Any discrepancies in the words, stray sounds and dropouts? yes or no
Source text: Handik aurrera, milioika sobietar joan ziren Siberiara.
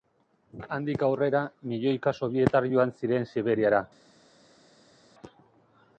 no